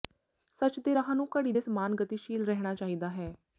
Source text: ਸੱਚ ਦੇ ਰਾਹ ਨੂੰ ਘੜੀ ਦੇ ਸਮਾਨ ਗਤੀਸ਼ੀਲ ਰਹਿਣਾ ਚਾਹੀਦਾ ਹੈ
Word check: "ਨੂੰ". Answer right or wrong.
right